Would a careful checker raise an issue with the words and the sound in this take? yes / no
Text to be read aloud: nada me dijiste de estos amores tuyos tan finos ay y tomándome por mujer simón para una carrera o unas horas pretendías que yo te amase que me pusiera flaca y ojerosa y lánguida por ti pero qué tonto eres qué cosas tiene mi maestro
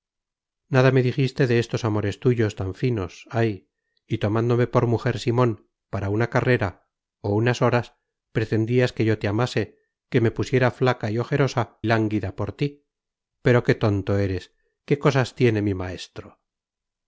yes